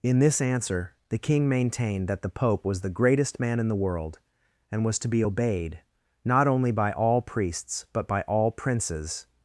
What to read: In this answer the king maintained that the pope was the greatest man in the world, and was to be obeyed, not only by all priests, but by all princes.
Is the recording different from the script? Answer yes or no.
no